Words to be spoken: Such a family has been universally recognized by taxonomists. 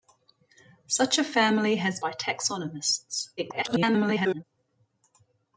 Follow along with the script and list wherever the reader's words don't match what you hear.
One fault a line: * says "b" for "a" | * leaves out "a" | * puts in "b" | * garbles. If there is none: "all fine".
* leaves out "been universally recognized"
* garbles